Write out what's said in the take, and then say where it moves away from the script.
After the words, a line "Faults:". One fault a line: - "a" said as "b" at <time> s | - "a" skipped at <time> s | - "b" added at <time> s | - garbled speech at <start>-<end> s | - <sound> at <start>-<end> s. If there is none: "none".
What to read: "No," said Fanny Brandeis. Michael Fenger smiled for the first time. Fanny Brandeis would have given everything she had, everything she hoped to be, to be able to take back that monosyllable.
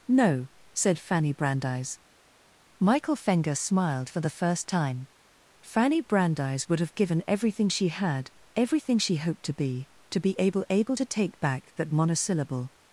"No," said Fanny Brandeis. Michael Fenger smiled for the first time. Fanny Brandeis would have given everything she had, everything she hoped to be, to be able able to take back that monosyllable.
Faults:
- "able" added at 10.7 s